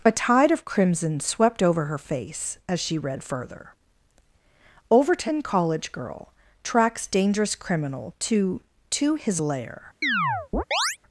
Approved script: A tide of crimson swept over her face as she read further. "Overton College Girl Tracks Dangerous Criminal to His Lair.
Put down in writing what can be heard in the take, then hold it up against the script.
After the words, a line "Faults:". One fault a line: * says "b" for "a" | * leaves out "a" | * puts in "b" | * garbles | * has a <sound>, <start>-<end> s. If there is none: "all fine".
A tide of crimson swept over her face as she read further. "Overton College Girl Tracks Dangerous Criminal to to His Lair.
Faults:
* puts in "to"
* has a chirp, 10.0-11.0 s